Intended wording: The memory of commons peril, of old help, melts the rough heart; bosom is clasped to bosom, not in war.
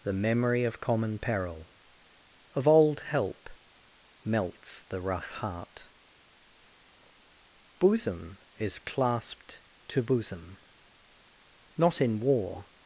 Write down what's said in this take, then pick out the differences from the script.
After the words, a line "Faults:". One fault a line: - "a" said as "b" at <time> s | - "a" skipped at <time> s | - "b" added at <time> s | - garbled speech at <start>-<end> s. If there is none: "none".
The memory of common peril, of old help, melts the rough heart; bosom is clasped to bosom, not in war.
Faults:
- "commons" said as "common" at 0.8 s